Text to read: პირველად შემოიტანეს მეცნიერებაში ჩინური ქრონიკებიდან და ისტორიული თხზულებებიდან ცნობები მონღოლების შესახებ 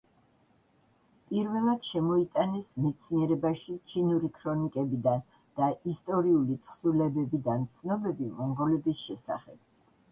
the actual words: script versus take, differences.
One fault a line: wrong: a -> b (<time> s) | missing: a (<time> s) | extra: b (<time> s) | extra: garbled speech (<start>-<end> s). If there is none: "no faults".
no faults